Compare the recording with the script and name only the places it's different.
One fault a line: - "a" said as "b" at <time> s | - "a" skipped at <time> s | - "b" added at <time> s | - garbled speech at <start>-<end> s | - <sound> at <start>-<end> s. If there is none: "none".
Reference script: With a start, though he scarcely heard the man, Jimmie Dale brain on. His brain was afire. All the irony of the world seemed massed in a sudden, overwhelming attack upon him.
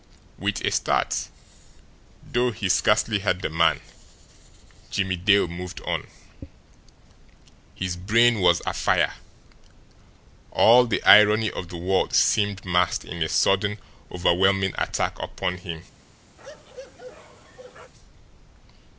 - "brain" said as "moved" at 5.5 s
- bark at 16.4-17.9 s